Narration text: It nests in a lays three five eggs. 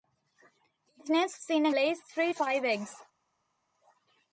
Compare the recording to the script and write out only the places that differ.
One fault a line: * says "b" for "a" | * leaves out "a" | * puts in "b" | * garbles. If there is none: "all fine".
all fine